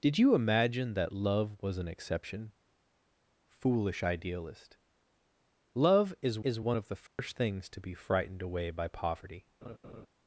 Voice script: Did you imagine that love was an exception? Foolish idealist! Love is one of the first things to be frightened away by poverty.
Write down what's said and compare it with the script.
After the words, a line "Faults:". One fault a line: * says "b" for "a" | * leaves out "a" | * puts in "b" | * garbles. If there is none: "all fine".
Did you imagine that love was an exception? Foolish idealist! Love is is one of the first things to be frightened away by poverty.
Faults:
* puts in "is"